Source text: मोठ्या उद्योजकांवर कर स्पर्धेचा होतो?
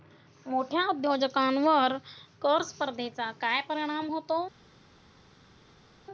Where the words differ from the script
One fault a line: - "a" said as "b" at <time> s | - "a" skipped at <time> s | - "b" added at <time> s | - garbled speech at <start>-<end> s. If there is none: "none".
- "काय परिणाम" added at 3.4 s